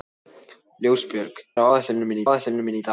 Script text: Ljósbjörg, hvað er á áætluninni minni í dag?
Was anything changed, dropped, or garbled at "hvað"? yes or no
yes